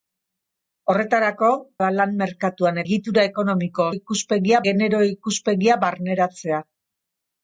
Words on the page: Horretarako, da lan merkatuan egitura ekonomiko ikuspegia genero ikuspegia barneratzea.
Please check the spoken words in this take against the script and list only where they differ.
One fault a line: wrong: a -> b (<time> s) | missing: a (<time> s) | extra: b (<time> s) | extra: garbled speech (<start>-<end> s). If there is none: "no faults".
no faults